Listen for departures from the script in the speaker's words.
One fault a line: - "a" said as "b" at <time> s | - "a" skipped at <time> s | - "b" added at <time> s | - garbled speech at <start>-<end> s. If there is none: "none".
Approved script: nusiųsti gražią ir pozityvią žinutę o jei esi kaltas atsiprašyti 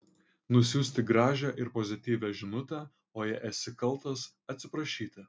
none